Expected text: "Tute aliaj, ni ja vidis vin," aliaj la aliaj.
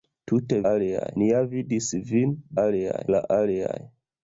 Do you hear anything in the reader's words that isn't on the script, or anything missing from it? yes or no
no